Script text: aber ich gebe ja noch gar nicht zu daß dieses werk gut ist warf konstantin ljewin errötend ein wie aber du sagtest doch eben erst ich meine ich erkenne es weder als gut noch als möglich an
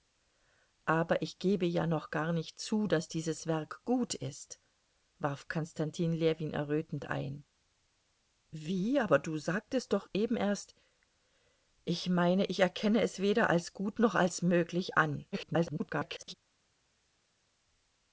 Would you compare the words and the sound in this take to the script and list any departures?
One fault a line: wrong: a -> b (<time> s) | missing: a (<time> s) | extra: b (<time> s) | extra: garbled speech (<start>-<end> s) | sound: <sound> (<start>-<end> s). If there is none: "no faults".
extra: garbled speech (15.3-16.3 s)